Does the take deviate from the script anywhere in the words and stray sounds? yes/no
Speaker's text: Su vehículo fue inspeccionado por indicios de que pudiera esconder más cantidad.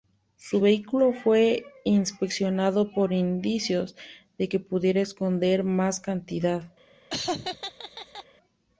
yes